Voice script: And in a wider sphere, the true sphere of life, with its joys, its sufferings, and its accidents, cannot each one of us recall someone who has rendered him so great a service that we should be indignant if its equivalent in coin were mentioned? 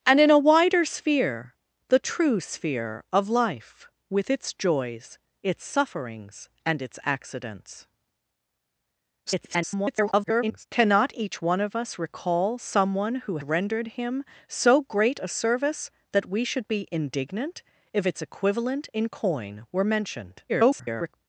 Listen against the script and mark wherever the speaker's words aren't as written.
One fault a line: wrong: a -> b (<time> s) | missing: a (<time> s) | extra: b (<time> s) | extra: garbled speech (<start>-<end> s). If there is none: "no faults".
extra: garbled speech (9.3-10.7 s)
missing: has (13.4 s)
extra: garbled speech (20.5-21.1 s)